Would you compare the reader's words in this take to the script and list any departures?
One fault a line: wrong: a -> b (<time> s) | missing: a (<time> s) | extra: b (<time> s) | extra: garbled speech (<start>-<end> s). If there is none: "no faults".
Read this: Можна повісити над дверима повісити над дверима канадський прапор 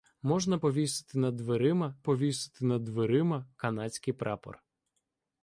no faults